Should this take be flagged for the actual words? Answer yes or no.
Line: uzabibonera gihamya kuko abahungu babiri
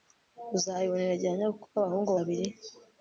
no